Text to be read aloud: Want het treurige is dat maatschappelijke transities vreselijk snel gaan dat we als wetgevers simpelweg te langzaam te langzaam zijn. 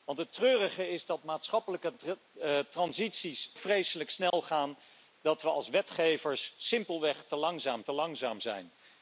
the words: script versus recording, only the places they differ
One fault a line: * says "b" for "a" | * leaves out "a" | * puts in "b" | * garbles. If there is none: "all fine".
all fine